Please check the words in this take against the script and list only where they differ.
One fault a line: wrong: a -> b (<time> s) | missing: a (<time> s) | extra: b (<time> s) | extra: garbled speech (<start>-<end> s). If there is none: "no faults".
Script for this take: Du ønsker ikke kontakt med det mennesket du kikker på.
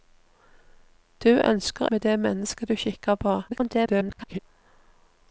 missing: ikke kontakt (1.9 s)
extra: garbled speech (3.5-4.4 s)